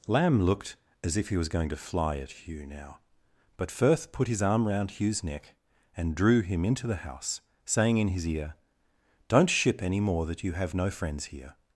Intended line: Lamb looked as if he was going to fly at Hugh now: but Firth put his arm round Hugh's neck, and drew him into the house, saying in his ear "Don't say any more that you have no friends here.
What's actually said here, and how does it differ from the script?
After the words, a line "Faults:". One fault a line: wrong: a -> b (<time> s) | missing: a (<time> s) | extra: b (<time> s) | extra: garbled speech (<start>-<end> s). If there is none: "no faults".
Lamb looked as if he was going to fly at Hugh now: but Firth put his arm round Hugh's neck, and drew him into the house, saying in his ear "Don't ship any more that you have no friends here.
Faults:
wrong: say -> ship (9.5 s)